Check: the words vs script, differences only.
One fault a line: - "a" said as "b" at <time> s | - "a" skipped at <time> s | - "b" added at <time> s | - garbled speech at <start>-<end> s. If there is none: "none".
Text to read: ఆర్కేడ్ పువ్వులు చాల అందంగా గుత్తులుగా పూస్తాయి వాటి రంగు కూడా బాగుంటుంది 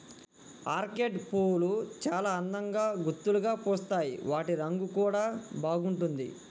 none